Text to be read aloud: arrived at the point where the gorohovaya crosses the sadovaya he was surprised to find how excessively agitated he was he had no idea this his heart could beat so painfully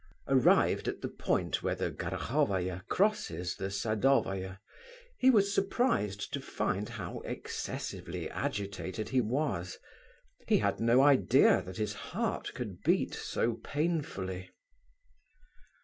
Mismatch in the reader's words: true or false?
true